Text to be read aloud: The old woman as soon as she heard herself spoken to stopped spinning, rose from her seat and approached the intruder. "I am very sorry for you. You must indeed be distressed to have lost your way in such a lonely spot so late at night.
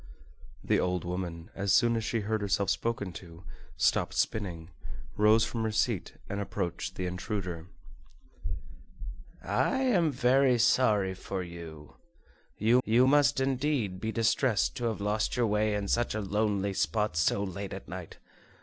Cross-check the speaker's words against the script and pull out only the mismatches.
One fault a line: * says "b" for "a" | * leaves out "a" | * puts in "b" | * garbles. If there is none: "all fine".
* puts in "you"